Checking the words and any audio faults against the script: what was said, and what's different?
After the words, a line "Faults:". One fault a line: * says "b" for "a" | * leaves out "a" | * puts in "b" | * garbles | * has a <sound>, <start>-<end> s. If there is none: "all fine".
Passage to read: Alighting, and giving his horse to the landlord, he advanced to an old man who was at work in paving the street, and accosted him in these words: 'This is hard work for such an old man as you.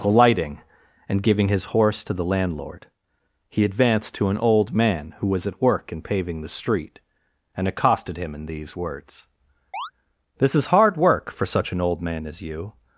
Alighting, and giving his horse to the landlord, he advanced to an old man who was at work in paving the street, and accosted him in these words: 'This is hard work for such an old man as you.
Faults:
* has a chirp, 9.7-9.9 s